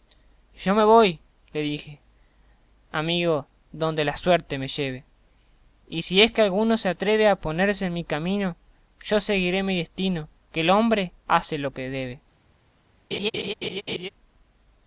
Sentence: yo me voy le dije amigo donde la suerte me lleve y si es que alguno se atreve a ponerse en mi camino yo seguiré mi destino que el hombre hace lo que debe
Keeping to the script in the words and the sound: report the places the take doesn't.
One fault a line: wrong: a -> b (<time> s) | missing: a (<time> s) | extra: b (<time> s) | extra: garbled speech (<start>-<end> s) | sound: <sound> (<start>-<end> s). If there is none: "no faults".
sound: laugh (13.1-14.1 s)